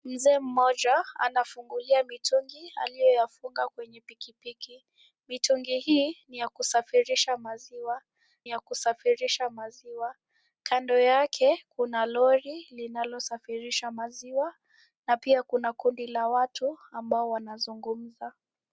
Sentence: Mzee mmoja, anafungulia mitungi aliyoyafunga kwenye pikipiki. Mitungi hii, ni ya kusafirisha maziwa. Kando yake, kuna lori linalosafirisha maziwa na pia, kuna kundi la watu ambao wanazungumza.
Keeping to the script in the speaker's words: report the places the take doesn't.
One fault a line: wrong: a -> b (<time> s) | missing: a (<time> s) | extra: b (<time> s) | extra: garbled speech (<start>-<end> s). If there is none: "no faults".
extra: ya kusafirisha maziwa (8.5 s)